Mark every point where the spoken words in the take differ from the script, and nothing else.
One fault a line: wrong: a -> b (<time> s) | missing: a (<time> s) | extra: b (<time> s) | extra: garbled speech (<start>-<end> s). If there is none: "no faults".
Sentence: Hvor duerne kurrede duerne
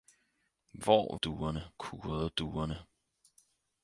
no faults